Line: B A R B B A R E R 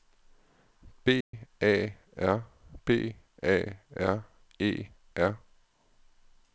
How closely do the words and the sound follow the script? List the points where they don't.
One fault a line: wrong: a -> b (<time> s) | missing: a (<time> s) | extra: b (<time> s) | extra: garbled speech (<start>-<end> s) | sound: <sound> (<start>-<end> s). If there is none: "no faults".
sound: dropout (1.2-1.3 s)
missing: B (3.1 s)